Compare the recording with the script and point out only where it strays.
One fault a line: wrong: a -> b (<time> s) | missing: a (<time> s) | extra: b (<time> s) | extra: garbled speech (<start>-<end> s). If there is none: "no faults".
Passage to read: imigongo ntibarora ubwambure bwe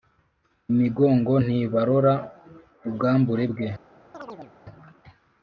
no faults